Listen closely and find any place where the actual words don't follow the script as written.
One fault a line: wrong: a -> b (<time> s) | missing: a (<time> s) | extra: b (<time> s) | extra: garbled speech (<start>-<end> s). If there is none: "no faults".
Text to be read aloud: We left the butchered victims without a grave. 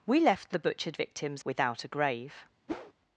no faults